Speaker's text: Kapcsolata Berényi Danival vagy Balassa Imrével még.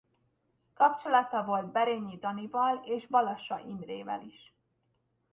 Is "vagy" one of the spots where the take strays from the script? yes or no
yes